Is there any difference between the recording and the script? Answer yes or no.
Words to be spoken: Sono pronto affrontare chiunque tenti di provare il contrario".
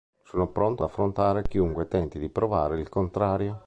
no